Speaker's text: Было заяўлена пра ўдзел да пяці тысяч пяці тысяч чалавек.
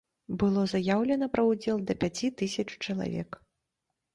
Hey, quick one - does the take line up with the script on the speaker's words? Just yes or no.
no